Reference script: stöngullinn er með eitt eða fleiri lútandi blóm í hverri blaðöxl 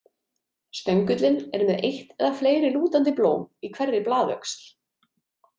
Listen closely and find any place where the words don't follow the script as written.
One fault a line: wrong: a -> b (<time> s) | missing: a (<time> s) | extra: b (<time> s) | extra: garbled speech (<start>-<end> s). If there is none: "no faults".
no faults